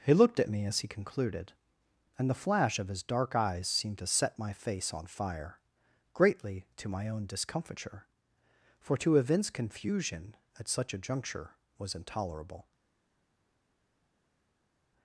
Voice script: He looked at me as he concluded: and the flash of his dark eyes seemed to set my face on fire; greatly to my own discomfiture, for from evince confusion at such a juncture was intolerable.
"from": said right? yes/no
no